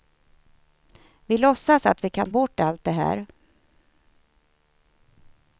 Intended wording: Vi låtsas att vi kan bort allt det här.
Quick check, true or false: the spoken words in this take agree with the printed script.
true